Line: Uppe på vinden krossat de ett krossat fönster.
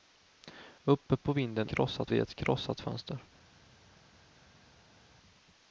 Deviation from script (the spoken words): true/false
false